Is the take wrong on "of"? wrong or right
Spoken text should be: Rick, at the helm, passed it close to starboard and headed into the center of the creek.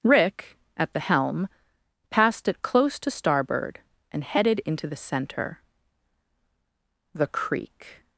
wrong